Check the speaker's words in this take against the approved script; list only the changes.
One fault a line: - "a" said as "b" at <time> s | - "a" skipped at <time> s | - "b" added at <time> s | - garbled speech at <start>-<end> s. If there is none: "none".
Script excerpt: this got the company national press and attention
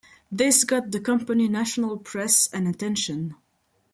none